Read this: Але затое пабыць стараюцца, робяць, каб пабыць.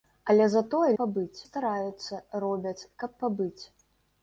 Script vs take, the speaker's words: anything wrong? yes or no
no